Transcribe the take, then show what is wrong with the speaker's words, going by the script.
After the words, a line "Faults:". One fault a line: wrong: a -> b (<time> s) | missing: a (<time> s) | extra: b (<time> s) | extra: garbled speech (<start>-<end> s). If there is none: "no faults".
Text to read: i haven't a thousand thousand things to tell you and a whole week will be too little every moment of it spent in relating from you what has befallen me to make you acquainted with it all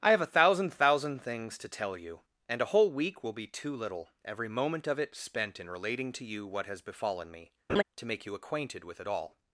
i have a thousand thousand things to tell you and a whole week will be too little every moment of it spent in relating to you what has befallen me to make you acquainted with it all
Faults:
wrong: haven't -> have (0.1 s)
wrong: from -> to (6.1 s)